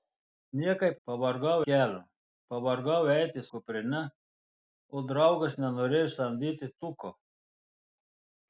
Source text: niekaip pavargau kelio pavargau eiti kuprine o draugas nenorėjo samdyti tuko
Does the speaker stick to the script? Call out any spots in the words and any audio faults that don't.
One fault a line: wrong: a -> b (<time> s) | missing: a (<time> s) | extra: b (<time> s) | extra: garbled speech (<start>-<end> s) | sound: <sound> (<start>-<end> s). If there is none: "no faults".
no faults